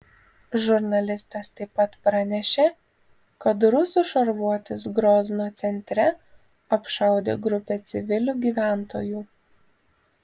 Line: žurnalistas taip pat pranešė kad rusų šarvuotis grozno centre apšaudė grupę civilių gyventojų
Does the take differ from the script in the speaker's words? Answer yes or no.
no